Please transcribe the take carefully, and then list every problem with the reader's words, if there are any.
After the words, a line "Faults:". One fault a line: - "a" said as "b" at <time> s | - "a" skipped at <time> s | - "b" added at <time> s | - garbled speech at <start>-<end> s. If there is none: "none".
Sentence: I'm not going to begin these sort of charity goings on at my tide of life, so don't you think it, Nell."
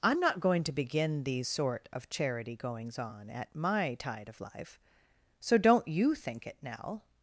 I'm not going to begin these sort of charity goings on at my tide of life, so don't you think it, Nell."
Faults:
none